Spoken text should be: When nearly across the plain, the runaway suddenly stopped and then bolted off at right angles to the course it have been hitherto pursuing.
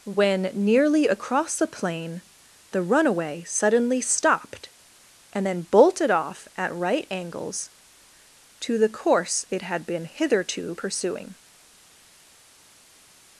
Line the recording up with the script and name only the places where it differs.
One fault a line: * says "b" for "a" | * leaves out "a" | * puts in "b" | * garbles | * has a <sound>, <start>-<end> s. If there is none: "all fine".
* says "had" for "have"